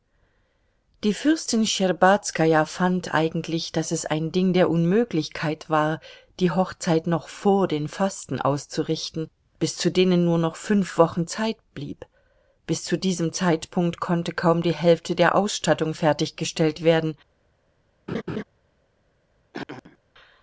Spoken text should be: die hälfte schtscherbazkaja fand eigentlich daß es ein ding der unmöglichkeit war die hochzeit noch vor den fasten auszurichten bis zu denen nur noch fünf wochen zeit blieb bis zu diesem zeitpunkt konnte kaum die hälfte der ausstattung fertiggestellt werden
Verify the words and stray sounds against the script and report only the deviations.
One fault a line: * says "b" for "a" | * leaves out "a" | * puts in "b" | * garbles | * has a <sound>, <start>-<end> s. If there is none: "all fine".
* says "fürstin" for "hälfte"
* has a laugh, 18.1-18.4 s
* has a throat clearing, 19.5-20.0 s